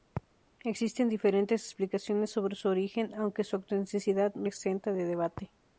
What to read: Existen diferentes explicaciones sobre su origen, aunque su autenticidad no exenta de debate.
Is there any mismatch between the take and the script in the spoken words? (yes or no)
no